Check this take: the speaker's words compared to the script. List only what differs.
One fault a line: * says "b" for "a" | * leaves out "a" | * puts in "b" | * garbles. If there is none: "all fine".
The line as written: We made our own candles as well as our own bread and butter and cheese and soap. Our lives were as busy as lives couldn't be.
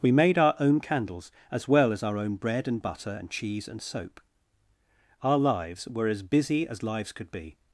* says "could" for "couldn't"